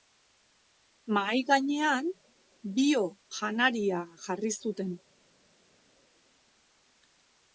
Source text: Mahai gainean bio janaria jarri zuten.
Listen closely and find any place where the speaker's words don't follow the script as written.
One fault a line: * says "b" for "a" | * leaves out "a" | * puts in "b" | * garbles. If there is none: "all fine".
all fine